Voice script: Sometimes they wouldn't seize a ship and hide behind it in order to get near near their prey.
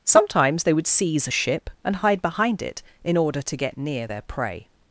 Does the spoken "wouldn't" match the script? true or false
false